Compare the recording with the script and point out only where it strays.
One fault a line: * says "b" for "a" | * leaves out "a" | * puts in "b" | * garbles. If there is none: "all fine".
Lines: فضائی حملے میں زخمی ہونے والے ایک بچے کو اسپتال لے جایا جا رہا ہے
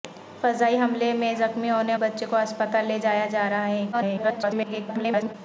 * leaves out "والے ایک"
* garbles